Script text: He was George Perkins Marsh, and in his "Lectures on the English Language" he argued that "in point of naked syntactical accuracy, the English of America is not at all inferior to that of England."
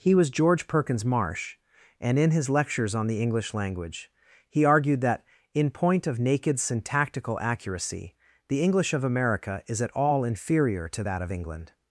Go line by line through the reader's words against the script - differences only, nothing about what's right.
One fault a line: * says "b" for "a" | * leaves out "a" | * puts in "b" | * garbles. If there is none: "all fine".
* leaves out "not"